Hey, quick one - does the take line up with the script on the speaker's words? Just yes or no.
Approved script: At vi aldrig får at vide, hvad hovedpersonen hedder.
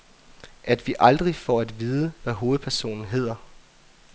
yes